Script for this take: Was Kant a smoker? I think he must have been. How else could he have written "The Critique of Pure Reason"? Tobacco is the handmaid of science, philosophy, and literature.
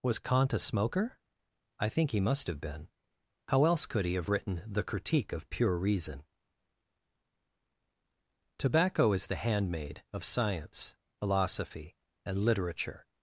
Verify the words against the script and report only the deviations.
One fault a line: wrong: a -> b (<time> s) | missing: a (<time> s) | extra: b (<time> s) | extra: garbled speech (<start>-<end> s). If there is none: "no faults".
no faults